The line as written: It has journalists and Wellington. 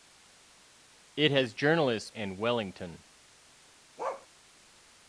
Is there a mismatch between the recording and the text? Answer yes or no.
no